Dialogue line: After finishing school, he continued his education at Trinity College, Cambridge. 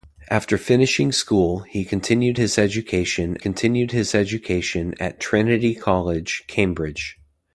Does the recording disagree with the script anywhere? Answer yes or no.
yes